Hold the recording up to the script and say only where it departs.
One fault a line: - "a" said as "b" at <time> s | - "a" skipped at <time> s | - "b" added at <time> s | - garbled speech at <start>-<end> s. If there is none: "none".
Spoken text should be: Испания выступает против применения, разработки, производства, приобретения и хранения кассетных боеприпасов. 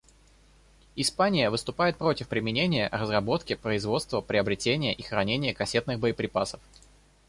none